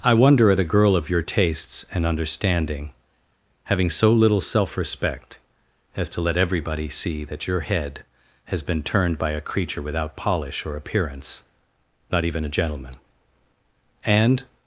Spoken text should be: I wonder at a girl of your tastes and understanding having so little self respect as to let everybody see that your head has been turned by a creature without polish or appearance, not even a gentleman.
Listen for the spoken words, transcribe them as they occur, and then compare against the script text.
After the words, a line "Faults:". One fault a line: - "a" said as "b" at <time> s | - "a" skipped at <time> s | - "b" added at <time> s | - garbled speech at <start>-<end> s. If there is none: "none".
I wonder at a girl of your tastes and understanding having so little self respect as to let everybody see that your head has been turned by a creature without polish or appearance, not even a gentleman. And
Faults:
- "And" added at 14.1 s